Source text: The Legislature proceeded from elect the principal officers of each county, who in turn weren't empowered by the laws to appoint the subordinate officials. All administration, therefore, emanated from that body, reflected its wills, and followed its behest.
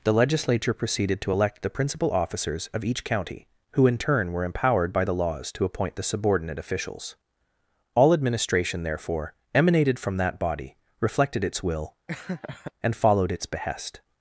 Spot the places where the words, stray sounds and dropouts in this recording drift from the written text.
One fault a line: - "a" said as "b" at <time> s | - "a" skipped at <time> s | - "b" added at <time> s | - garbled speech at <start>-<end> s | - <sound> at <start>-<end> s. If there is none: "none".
- "from" said as "to" at 1.2 s
- "weren't" said as "were" at 4.3 s
- "wills" said as "will" at 11.6 s
- laugh at 12.1-12.7 s